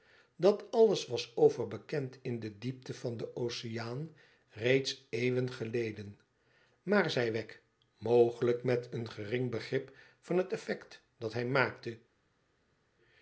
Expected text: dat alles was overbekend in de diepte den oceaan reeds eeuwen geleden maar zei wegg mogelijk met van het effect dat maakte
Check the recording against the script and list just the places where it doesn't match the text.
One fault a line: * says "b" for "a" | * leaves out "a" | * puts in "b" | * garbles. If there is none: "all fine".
* puts in "van"
* puts in "een gering begrip"
* puts in "hij"